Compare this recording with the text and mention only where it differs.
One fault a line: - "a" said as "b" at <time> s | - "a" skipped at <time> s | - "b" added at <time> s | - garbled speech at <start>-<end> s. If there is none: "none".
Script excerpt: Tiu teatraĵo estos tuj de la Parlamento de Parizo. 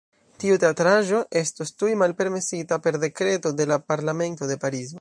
- "malpermesita per Dekreto" added at 2.0 s